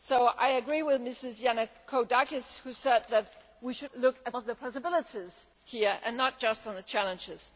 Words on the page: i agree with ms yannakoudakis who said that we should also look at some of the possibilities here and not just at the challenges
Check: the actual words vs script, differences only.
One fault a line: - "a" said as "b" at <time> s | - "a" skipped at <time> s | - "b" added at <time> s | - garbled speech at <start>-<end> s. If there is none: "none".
- "also" skipped at 3.9 s
- "some" skipped at 4.4 s